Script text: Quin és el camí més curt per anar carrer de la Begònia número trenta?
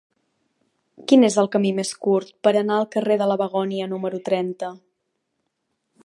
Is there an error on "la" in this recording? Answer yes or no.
no